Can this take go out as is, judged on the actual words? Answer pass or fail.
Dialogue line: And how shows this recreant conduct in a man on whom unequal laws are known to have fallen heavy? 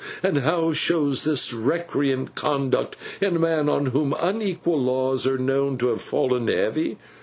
pass